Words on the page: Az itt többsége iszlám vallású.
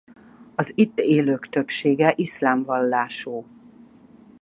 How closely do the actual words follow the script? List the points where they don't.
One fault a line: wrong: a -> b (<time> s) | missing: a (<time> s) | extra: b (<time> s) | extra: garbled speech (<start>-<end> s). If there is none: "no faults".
extra: élők (1.0 s)